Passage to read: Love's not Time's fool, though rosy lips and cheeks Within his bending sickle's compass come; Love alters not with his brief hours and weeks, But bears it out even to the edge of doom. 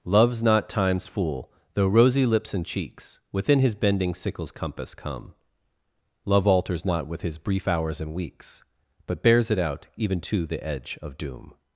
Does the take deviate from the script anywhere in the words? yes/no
no